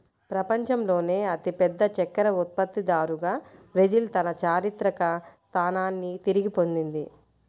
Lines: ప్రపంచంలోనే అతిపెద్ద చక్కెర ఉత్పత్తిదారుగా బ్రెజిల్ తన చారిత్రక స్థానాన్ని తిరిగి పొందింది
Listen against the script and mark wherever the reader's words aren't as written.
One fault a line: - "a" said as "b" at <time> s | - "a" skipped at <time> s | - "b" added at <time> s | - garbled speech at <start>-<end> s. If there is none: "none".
none